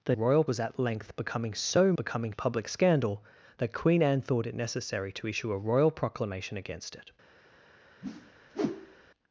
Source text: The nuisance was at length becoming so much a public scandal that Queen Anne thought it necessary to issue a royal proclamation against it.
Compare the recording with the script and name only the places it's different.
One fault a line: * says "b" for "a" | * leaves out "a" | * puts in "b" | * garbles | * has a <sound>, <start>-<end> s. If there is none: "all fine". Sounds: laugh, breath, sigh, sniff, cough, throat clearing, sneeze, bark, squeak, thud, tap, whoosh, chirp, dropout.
* says "royal" for "nuisance"
* says "becoming" for "much"
* has a whoosh, 8.0-9.1 s